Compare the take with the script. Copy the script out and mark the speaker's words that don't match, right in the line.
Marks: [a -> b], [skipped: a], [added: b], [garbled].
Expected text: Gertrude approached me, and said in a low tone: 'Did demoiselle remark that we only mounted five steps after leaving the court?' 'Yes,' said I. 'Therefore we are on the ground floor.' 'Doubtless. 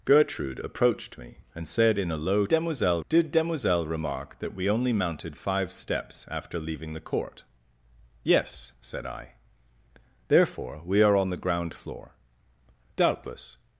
Gertrude approached me, and said in a low [tone: -> demoiselle] 'Did demoiselle remark that we only mounted five steps after leaving the court?' 'Yes,' said I. 'Therefore we are on the ground floor.' 'Doubtless.